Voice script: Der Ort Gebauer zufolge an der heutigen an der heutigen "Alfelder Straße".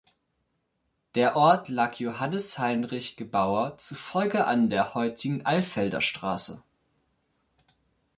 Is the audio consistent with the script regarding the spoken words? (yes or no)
no